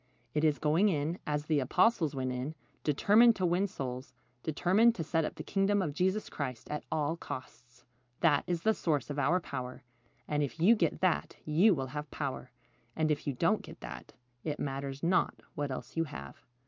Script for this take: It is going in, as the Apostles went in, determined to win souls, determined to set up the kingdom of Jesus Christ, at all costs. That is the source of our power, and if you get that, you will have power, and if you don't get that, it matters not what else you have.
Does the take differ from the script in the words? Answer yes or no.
no